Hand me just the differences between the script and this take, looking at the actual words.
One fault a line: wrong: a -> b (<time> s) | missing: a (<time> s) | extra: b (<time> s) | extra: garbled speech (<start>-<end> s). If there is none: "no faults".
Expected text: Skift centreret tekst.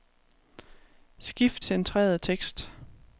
no faults